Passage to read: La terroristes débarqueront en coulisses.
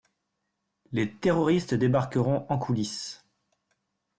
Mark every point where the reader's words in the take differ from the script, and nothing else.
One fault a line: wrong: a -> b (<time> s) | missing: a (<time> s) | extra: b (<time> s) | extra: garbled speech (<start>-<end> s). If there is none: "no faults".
wrong: La -> Les (0.9 s)